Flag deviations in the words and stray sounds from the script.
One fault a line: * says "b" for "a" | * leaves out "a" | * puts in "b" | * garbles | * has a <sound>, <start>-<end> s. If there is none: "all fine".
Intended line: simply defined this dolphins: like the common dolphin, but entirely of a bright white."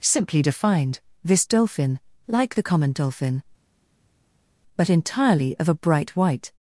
* says "dolphin" for "dolphins"